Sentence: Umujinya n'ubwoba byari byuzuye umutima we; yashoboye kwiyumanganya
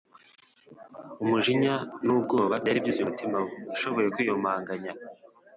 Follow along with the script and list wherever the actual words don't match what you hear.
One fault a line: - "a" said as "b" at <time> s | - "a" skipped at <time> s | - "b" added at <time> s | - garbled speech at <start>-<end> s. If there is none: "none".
none